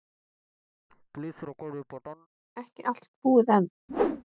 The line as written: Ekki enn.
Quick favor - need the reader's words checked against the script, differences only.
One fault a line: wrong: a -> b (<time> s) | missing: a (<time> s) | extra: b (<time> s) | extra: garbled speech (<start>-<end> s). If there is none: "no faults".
extra: allt búið (2.9 s)